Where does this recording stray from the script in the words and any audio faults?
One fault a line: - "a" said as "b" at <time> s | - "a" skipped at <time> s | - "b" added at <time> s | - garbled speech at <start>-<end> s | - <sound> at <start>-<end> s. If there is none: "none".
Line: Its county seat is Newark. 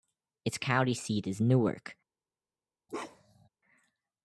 - bark at 2.9-3.5 s